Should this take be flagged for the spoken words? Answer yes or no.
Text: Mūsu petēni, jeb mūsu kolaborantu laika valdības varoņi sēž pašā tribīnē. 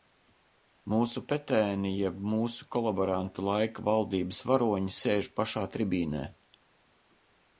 no